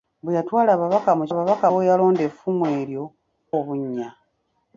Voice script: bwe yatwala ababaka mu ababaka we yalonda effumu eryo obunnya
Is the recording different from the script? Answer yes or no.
no